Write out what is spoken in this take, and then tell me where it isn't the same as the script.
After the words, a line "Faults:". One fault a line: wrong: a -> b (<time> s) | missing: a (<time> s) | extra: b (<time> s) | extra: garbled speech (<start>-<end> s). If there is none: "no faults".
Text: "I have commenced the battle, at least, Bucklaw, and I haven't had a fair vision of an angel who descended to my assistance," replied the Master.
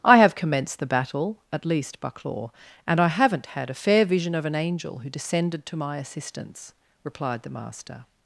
"I have commenced the battle, at least, Bucklaw, and I haven't had a fair vision of an angel who descended to my assistance," replied the Master.
Faults:
no faults